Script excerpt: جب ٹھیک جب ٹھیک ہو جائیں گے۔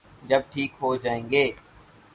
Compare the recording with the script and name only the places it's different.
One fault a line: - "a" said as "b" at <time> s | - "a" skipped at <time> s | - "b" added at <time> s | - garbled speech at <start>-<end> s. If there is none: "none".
- "جب ٹھیک" skipped at 0.7 s